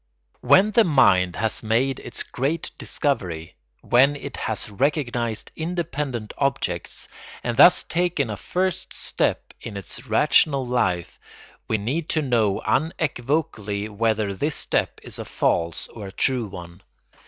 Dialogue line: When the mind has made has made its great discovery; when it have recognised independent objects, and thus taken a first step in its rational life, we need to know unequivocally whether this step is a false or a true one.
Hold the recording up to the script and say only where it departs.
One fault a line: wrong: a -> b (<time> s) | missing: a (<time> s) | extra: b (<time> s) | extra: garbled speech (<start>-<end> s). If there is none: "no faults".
missing: has made (2.0 s)
wrong: have -> has (4.3 s)